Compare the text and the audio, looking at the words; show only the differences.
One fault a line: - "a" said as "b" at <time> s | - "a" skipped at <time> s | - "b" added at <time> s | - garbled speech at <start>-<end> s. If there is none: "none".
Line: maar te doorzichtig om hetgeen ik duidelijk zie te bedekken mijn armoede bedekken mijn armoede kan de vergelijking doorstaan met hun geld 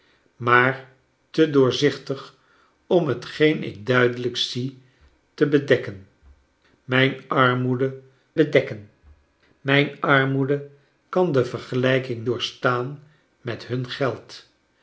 none